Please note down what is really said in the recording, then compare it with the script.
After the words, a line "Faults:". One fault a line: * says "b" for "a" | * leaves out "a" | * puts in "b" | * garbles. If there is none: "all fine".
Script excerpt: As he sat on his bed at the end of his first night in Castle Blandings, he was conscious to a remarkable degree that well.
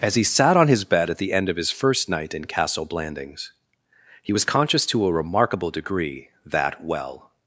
As he sat on his bed at the end of his first night in Castle Blandings, he was conscious to a remarkable degree that well.
Faults:
all fine